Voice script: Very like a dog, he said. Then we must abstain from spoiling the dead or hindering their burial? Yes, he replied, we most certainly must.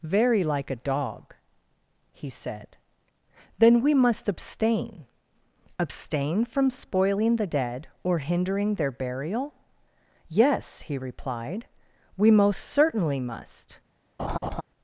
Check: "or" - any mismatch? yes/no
no